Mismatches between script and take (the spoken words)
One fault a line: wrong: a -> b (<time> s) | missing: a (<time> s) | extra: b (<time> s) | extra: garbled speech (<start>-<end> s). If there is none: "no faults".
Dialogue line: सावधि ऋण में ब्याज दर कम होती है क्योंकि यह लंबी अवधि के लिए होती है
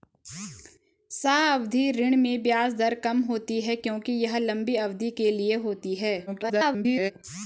extra: garbled speech (6.3-7.1 s)